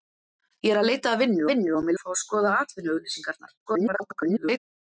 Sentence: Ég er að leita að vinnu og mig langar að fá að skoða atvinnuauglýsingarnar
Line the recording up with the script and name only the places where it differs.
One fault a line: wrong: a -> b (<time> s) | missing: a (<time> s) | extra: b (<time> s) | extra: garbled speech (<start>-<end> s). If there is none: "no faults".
extra: vinnu (1.5 s)
missing: langar (2.0 s)
extra: garbled speech (3.7-4.6 s)